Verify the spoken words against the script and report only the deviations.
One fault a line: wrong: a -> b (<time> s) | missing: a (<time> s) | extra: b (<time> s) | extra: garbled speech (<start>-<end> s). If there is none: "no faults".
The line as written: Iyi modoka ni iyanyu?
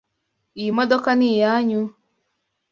no faults